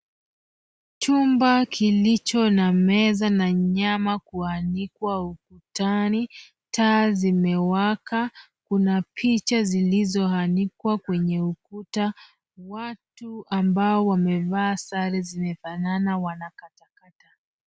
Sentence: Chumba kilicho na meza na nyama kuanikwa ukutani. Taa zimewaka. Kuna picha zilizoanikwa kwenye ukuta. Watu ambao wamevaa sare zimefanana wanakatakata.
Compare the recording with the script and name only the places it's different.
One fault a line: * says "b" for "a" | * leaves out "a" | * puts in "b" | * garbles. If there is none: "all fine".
all fine